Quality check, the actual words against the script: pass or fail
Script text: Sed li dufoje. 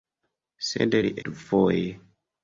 pass